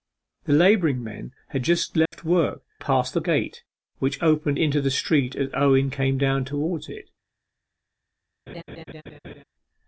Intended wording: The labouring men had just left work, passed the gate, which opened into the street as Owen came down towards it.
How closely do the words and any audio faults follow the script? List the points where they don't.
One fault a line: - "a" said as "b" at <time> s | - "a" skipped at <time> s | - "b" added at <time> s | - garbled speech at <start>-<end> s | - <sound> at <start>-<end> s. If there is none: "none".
- dropout at 2.1-2.1 s
- laugh at 8.5-9.4 s